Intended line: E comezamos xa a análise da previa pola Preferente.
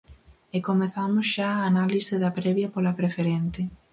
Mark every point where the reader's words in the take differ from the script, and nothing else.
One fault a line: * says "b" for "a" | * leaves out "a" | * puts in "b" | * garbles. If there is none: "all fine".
all fine